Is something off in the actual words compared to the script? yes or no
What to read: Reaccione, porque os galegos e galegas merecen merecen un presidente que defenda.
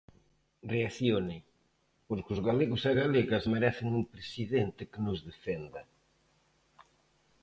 yes